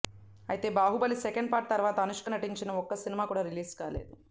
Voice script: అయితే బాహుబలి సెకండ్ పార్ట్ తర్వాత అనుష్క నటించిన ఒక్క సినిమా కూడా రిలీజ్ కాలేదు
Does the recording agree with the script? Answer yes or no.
yes